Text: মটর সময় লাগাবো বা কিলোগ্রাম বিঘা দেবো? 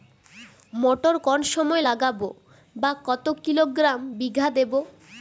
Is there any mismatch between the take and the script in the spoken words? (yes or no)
yes